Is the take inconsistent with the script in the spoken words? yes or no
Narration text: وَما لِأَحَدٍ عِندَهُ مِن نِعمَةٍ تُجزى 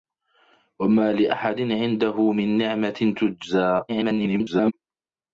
yes